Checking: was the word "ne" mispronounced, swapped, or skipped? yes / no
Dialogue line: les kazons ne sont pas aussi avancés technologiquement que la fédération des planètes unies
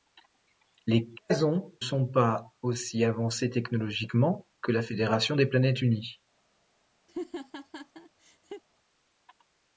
yes